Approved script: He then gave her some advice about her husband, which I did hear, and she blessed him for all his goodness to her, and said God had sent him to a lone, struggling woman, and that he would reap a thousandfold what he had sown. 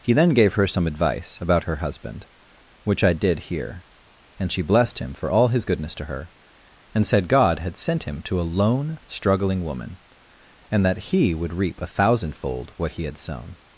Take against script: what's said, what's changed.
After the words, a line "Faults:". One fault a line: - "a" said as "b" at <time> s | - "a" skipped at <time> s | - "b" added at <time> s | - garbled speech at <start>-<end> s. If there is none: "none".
He then gave her some advice about her husband, which I did hear, and she blessed him for all his goodness to her, and said God had sent him to a lone, struggling woman, and that he would reap a thousandfold what he had sown.
Faults:
none